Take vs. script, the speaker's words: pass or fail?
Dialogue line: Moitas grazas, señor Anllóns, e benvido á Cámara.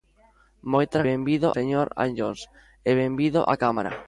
fail